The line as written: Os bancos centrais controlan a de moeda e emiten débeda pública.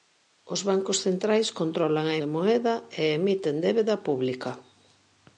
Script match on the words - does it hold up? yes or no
yes